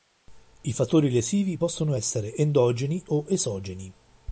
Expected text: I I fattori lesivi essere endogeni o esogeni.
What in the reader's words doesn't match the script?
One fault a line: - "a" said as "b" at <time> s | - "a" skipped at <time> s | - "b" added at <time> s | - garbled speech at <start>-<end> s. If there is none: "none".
- "I" skipped at 0.7 s
- "possono" added at 1.5 s